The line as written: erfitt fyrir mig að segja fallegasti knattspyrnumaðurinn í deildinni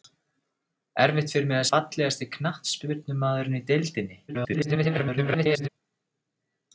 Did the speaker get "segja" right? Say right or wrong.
wrong